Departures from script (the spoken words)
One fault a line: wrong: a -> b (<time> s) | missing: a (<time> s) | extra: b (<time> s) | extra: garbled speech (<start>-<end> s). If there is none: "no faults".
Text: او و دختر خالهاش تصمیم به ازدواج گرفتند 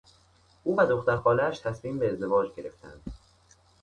no faults